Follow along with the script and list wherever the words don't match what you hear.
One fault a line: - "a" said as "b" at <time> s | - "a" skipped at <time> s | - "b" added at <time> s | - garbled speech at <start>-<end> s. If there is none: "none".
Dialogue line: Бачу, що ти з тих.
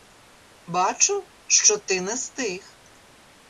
- "не" added at 2.0 s